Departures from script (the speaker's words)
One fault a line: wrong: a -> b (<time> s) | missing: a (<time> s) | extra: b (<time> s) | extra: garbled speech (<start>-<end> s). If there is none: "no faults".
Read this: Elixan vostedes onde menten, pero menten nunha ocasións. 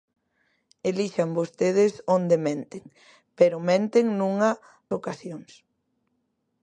no faults